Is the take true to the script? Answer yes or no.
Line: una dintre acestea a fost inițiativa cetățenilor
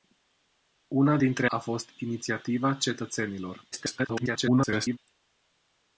no